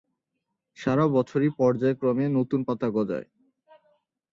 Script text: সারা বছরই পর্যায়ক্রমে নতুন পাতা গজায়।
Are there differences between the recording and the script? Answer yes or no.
no